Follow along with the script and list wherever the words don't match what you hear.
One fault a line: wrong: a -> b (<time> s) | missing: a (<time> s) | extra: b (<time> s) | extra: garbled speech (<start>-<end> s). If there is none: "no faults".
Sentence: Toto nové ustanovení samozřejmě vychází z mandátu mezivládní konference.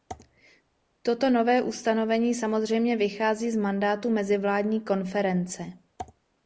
no faults